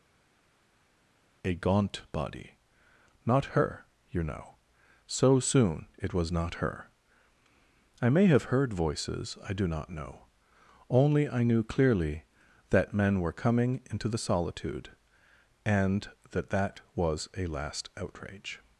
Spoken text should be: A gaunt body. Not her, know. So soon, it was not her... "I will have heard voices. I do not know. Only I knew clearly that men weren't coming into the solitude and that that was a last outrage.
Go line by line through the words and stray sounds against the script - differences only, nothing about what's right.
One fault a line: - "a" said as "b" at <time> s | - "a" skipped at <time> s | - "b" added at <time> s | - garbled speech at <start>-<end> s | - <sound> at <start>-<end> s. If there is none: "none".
- "you" added at 4.1 s
- "will" said as "may" at 8.1 s
- "weren't" said as "were" at 13.2 s